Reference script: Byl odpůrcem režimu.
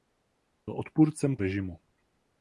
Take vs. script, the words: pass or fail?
pass